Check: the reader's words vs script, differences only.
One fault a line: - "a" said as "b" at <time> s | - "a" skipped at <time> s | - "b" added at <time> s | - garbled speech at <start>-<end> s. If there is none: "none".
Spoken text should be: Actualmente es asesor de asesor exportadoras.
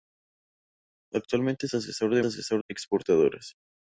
none